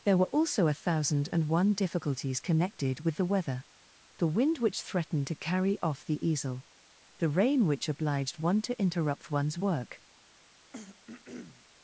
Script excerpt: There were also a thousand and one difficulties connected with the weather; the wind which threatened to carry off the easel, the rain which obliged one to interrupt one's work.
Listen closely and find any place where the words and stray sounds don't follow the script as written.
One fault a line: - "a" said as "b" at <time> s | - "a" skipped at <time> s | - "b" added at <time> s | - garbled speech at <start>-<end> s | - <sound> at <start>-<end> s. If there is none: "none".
- throat clearing at 10.7-11.6 s